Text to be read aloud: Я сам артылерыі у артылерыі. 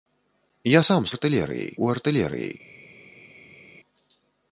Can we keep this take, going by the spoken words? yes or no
yes